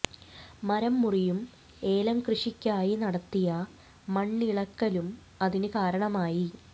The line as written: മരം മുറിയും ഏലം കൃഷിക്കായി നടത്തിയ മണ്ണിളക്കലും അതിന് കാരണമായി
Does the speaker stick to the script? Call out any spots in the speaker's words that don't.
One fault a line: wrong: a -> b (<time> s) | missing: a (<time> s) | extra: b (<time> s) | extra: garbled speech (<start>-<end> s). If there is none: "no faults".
no faults